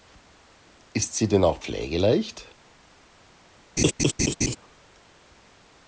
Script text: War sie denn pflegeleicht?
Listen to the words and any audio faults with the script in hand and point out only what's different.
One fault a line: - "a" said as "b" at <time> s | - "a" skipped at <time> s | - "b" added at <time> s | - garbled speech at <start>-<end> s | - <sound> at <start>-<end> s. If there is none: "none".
- "War" said as "Ist" at 0.9 s
- "auch" added at 1.4 s
- laugh at 3.8-4.6 s